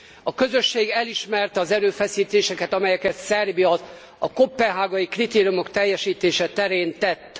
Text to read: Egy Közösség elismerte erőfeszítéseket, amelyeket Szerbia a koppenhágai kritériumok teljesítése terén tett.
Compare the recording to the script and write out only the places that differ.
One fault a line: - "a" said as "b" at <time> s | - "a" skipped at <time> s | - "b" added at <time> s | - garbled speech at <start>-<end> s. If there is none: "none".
- "Egy" said as "A" at 0.2 s
- "az" added at 1.6 s